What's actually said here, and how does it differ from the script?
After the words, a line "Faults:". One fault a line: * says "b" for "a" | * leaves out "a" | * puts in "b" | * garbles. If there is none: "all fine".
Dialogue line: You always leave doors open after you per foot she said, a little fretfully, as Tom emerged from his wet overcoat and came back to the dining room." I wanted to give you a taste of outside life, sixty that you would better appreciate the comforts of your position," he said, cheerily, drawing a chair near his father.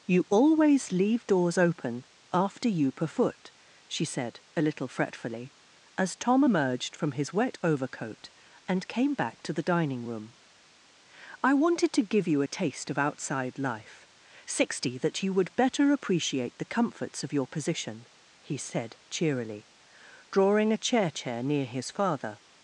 You always leave doors open after you per foot she said, a little fretfully, as Tom emerged from his wet overcoat and came back to the dining room." I wanted to give you a taste of outside life, sixty that you would better appreciate the comforts of your position," he said, cheerily, drawing a chair chair near his father.
Faults:
* puts in "chair"